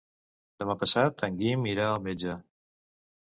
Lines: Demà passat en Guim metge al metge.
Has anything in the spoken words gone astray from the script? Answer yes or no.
yes